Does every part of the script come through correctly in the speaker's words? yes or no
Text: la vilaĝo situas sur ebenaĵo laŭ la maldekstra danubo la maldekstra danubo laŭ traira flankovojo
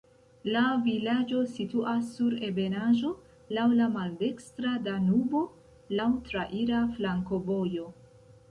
no